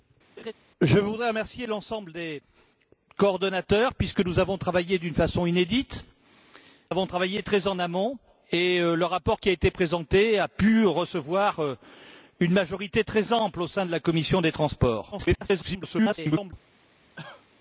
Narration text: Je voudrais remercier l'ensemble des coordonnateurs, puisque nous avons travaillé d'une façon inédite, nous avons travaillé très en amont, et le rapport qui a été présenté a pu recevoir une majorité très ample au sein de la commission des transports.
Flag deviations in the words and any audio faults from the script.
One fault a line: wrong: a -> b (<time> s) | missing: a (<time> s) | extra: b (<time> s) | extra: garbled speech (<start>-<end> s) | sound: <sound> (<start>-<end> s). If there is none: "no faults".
sound: laugh (0.4-0.5 s)
missing: nous (6.1 s)
extra: garbled speech (15.1-16.5 s)
sound: cough (17.2-17.5 s)